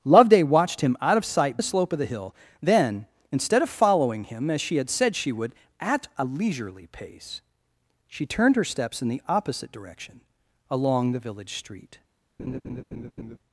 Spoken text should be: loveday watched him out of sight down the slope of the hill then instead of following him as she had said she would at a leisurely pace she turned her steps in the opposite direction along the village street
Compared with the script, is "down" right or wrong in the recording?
wrong